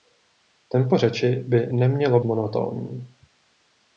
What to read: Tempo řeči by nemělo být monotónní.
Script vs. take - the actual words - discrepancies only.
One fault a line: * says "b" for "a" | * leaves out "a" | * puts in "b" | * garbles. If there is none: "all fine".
* leaves out "být"